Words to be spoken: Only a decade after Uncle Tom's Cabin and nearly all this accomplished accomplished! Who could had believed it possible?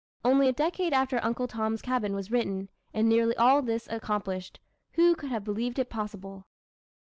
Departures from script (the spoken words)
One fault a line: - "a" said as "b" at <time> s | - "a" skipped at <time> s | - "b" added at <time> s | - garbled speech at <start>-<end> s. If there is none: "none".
- "was written" added at 2.1 s
- "accomplished" skipped at 4.6 s
- "had" said as "have" at 5.3 s